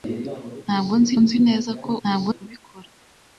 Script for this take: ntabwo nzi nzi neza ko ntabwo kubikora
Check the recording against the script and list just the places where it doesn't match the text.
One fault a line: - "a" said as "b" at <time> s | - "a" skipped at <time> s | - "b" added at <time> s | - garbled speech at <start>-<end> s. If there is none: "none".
none